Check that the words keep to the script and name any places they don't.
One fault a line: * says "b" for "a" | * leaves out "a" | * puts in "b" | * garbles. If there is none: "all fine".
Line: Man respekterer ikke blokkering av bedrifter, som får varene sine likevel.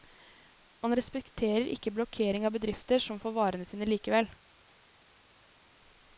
all fine